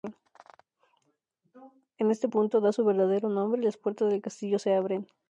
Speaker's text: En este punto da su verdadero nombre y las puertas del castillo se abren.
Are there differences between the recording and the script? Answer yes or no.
no